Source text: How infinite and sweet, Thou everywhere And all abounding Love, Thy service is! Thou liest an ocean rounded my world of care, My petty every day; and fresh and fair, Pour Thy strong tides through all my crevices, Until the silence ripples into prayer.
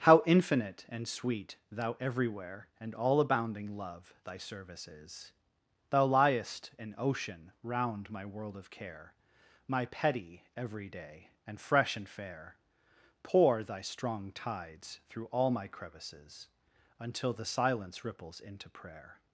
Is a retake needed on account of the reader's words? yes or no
yes